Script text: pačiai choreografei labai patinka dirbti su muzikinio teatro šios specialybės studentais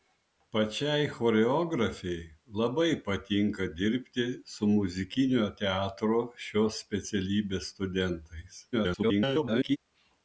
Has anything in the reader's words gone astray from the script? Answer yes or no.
yes